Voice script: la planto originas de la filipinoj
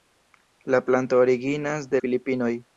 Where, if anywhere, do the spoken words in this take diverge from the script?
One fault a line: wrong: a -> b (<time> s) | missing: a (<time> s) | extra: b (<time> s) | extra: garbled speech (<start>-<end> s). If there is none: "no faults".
missing: la (2.0 s)